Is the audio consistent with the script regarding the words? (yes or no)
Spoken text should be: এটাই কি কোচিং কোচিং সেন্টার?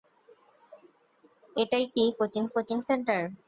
yes